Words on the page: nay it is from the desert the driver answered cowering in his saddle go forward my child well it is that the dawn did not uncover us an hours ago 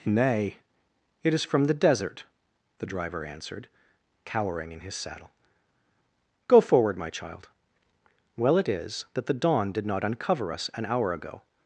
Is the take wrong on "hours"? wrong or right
wrong